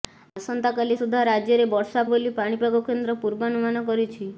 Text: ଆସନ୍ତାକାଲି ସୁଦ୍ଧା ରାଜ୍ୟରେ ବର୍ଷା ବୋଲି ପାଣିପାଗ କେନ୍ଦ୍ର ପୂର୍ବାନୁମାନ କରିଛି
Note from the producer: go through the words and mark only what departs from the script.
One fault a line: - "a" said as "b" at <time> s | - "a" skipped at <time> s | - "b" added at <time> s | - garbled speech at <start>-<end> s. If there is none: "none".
none